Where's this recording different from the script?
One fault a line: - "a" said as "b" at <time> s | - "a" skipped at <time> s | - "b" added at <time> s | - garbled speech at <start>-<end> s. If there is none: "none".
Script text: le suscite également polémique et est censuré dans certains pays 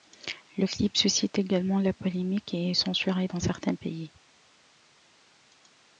- "clip" added at 0.7 s
- "la" added at 1.8 s